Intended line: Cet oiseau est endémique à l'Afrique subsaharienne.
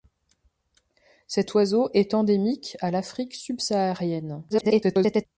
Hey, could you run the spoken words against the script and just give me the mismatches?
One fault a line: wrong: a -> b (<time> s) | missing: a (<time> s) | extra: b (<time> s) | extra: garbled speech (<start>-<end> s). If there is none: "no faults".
extra: garbled speech (4.5-5.3 s)